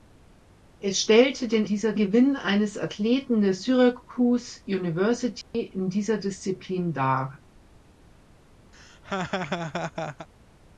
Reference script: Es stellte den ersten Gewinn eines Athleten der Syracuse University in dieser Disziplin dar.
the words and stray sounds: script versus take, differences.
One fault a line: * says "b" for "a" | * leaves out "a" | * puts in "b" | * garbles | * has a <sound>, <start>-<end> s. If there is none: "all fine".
* says "dieser" for "ersten"
* has a dropout, 5.4-5.5 s
* has a laugh, 8.7-10.3 s